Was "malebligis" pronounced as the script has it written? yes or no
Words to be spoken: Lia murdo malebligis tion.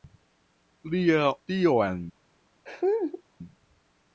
no